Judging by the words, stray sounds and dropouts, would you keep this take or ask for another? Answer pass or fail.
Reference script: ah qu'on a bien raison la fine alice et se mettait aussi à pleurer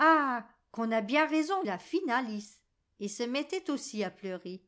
pass